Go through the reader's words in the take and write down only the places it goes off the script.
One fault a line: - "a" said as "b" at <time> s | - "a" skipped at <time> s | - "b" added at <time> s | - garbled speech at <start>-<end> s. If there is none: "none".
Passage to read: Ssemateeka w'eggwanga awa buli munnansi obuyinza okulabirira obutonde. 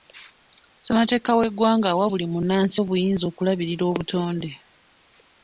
none